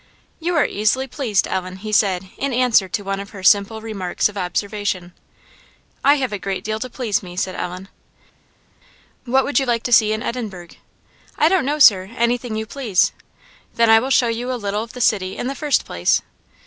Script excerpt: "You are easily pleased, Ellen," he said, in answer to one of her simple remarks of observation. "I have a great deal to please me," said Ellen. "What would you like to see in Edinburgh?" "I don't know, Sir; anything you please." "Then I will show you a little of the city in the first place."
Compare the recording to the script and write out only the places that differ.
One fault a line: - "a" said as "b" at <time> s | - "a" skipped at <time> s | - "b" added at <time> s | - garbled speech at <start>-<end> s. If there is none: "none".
none